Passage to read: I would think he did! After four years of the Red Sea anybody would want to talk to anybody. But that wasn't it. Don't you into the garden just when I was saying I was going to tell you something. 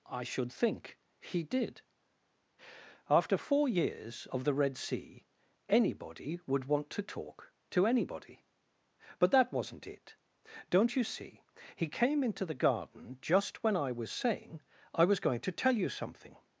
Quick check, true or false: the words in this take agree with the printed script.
false